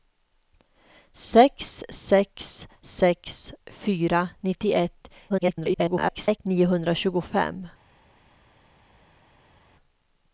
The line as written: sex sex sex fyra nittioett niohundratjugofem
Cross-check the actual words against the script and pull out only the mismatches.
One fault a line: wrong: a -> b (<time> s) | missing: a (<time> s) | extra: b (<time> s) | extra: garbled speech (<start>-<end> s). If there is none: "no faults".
extra: garbled speech (5.3-6.4 s)